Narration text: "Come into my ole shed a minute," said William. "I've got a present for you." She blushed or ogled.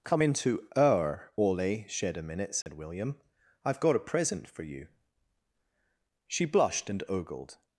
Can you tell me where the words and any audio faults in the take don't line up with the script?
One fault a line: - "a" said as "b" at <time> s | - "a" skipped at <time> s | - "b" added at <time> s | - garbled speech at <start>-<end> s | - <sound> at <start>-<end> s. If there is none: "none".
- "my" said as "our" at 0.8 s
- dropout at 2.6-2.7 s
- "or" said as "and" at 6.9 s